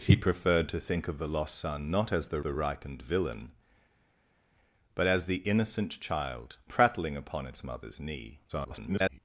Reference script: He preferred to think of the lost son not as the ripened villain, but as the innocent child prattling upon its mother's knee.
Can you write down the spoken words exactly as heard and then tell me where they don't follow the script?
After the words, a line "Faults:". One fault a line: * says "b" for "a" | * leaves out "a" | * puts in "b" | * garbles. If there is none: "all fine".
He preferred to think of the lost son not as the the ripened villain, but as the innocent child prattling upon its mother's knee. [garbled]
Faults:
* puts in "the"
* garbles